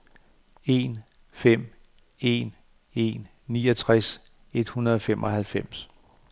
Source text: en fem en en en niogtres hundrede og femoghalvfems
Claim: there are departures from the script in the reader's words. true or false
true